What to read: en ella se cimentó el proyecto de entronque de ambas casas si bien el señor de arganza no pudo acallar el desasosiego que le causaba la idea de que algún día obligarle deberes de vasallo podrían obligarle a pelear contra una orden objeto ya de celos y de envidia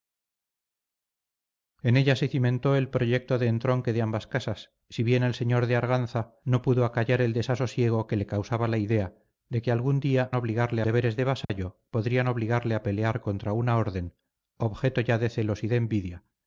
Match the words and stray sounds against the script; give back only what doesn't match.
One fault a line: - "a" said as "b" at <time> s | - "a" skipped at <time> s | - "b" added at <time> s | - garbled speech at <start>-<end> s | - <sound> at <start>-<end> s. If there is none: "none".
- dropout at 11.4-11.5 s